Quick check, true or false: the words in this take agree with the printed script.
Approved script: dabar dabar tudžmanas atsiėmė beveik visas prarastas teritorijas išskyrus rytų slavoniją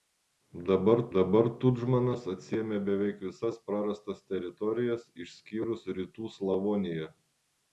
true